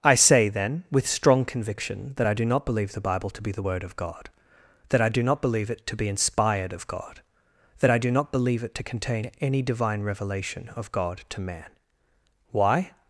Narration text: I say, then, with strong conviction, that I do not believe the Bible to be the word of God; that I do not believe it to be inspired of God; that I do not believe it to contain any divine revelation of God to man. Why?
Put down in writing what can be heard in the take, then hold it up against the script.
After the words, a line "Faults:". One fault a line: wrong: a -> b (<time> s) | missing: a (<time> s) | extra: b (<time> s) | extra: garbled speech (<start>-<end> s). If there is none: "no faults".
I say, then, with strong conviction, that I do not believe the Bible to be the word of God; that I do not believe it to be inspired of God; that I do not believe it to contain any divine revelation of God to man. Why?
Faults:
no faults